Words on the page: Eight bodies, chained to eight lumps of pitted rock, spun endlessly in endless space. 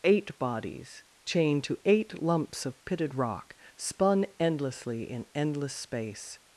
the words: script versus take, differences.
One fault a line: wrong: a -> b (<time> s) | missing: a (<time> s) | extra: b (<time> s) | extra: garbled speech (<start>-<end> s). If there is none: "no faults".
no faults